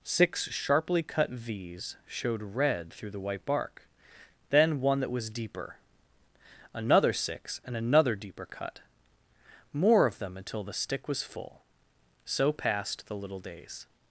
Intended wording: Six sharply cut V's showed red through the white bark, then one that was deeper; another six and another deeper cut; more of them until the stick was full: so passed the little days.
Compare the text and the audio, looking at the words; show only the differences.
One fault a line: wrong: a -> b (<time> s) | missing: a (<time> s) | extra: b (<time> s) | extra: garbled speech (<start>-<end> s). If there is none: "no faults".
no faults